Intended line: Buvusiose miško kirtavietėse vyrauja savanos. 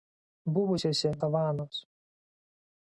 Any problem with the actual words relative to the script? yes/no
yes